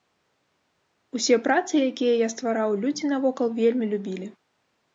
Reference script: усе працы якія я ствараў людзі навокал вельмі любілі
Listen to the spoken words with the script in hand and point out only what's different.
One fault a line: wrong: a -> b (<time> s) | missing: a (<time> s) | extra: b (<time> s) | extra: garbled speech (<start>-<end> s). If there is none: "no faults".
no faults